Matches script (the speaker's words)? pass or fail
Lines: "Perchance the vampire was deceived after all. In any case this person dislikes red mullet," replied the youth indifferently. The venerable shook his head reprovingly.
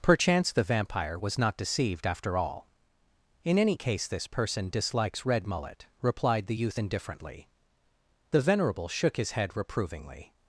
fail